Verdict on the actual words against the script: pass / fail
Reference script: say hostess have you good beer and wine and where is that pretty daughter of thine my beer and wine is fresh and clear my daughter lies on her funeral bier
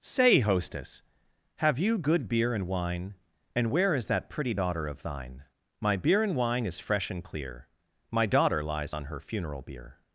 pass